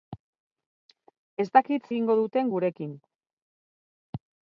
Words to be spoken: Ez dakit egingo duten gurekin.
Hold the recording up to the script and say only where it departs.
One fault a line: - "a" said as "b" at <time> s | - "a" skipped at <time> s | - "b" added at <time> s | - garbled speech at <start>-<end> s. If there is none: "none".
none